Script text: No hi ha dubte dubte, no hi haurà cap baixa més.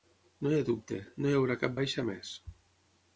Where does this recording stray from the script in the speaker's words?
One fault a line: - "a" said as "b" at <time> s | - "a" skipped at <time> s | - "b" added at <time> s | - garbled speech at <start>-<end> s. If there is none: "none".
- "dubte" skipped at 1.0 s